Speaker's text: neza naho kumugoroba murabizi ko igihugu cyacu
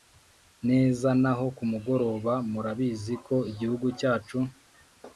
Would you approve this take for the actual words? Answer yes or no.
yes